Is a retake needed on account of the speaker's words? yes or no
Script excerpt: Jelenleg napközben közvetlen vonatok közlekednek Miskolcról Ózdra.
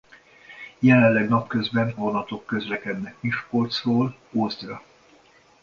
yes